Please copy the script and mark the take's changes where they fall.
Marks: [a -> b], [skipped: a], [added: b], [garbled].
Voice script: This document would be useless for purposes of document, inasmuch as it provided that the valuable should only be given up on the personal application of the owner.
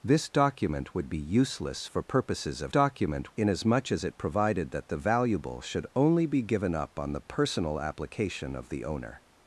This document would be useless for purposes of document, inasmuch as it provided that the valuable should only be given up on the personal application of the owner.